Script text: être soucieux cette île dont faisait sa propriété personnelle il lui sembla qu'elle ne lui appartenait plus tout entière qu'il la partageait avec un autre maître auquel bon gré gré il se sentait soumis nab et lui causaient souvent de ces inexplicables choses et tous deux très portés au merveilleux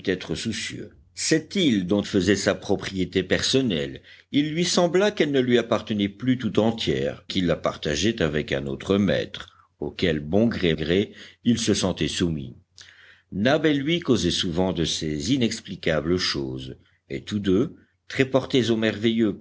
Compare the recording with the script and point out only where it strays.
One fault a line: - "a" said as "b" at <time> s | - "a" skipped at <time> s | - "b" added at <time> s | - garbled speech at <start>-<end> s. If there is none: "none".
none